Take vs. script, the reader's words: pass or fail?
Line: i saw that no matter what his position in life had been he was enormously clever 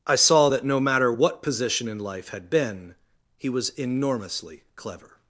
fail